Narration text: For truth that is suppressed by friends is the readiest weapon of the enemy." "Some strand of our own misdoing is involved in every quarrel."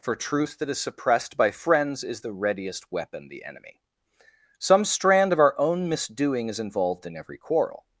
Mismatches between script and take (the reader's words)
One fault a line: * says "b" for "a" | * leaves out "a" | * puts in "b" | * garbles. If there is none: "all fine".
* leaves out "of"